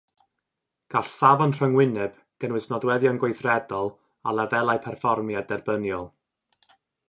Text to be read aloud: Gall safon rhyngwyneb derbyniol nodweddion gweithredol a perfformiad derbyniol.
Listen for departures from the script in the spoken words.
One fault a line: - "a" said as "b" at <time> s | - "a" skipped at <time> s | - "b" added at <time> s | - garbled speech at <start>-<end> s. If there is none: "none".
- "derbyniol" said as "gynnwys" at 2.4 s
- "lefelau" added at 4.4 s